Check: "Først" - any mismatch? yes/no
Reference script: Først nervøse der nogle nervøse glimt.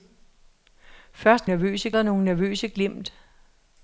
no